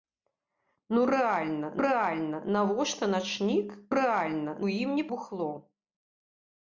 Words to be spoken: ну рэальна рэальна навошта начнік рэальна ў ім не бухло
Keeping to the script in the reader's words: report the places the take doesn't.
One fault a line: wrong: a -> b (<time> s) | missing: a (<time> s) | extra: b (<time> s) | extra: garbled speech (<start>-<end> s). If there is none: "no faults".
no faults